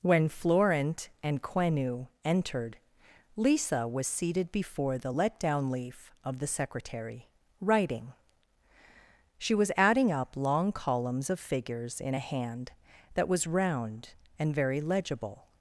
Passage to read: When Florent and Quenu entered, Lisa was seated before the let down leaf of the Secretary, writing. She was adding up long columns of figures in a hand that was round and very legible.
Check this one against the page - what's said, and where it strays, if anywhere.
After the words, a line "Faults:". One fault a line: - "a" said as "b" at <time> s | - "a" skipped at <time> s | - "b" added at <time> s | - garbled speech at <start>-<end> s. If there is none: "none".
When Florent and Quenu entered, Lisa was seated before the let down leaf of the Secretary, writing. She was adding up long columns of figures in a hand that was round and very legible.
Faults:
none